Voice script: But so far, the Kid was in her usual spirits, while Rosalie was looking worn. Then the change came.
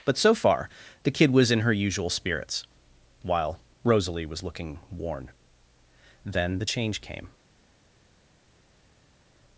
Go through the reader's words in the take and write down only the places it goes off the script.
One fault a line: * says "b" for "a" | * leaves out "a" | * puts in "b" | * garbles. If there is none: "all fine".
all fine